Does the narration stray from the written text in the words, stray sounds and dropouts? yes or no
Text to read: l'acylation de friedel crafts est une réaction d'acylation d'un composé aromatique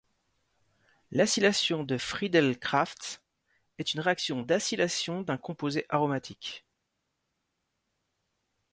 no